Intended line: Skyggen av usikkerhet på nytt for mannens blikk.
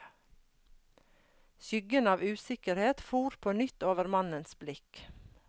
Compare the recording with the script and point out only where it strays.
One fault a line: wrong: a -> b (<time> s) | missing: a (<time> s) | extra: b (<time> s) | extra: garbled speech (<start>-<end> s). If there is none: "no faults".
extra: for (3.0 s)
wrong: for -> over (3.9 s)